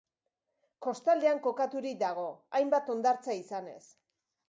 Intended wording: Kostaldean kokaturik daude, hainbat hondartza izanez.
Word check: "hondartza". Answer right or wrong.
right